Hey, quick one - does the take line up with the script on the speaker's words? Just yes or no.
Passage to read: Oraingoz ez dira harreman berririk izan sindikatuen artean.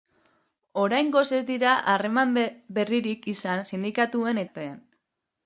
yes